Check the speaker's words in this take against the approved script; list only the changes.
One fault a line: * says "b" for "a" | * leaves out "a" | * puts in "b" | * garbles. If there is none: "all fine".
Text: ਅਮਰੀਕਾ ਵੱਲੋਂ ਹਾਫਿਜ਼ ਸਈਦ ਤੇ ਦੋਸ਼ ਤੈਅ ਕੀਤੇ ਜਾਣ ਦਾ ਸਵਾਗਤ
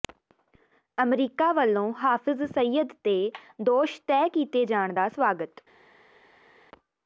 all fine